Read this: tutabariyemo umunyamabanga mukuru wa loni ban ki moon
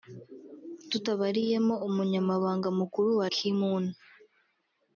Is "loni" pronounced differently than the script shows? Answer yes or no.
yes